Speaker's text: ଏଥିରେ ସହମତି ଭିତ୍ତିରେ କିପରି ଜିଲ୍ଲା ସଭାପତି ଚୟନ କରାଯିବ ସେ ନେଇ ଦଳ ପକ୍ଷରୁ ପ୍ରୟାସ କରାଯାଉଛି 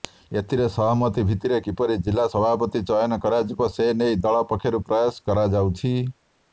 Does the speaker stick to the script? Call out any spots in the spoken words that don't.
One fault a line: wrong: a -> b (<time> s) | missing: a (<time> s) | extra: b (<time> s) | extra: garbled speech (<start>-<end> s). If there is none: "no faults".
no faults